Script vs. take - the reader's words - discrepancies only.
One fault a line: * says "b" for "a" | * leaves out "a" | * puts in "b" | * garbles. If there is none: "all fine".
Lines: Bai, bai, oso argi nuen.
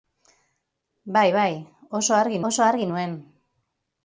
* puts in "oso argi"